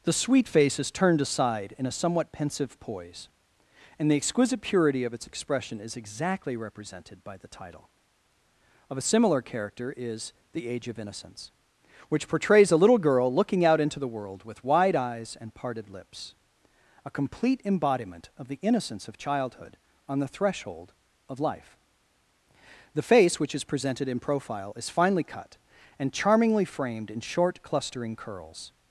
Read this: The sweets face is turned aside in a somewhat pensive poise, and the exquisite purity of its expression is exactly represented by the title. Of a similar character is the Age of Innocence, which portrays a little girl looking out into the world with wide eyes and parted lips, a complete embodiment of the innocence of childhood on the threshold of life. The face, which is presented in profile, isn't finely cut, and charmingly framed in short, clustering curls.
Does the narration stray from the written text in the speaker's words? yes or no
yes